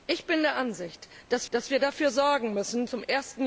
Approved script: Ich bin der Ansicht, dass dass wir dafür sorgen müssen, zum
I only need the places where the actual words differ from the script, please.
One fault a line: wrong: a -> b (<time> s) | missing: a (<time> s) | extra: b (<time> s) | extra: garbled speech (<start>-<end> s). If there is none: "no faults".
no faults